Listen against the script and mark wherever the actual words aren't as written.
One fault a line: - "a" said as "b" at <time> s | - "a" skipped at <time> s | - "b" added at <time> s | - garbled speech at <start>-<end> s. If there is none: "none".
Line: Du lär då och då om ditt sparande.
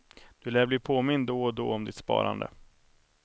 - "bli påmind" added at 0.7 s